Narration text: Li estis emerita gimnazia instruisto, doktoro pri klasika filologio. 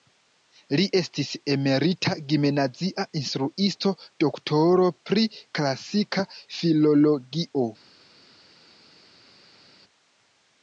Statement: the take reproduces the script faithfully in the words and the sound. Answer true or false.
true